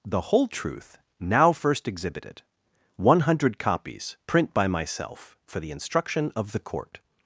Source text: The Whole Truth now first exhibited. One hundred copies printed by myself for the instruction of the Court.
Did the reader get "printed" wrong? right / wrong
wrong